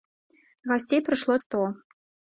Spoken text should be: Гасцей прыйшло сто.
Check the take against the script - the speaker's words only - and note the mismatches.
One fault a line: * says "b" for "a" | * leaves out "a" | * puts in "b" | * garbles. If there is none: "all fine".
all fine